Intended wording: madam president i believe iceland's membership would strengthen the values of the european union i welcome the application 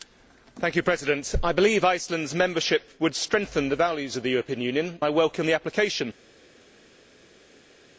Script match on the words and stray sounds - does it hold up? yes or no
yes